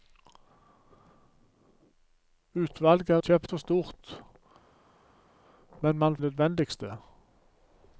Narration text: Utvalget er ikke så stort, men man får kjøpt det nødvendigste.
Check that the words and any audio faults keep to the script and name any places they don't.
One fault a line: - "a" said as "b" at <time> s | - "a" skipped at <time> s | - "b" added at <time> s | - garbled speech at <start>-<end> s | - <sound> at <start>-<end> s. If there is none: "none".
- "ikke" said as "kjøpt" at 3.2 s
- "får kjøpt det" skipped at 6.2 s